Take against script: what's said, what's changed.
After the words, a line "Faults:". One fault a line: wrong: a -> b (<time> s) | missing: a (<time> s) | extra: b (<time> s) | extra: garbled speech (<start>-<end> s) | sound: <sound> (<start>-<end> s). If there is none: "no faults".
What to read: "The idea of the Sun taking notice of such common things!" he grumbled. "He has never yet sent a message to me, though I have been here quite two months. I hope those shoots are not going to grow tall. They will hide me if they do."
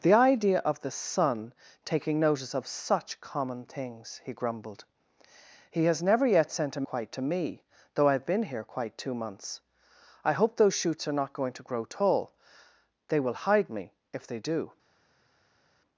"The idea of the Sun taking notice of such common things!" he grumbled. "He has never yet sent a quite to me, though I have been here quite two months. I hope those shoots are not going to grow tall. They will hide me if they do."
Faults:
wrong: message -> quite (6.8 s)